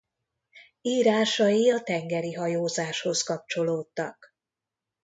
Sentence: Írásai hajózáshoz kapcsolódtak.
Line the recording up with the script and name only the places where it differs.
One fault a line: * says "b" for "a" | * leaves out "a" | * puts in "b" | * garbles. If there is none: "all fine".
* puts in "a tengeri"